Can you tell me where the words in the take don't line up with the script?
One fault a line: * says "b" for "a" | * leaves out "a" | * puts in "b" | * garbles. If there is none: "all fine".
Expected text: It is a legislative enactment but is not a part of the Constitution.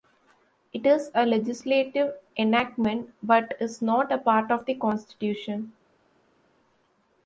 all fine